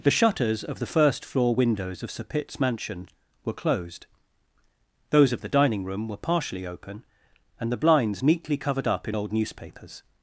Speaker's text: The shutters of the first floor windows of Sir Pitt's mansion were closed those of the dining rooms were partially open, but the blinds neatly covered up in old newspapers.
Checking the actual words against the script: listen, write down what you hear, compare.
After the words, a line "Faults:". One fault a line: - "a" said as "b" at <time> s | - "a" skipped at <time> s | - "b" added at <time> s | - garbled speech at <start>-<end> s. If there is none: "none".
The shutters of the first floor windows of Sir Pitt's mansion were closed those of the dining room were partially open, and the blinds neatly covered up in old newspapers.
Faults:
- "rooms" said as "room" at 5.8 s
- "but" said as "and" at 7.6 s